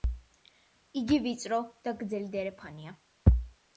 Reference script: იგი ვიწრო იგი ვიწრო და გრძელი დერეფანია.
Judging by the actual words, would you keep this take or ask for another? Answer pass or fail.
fail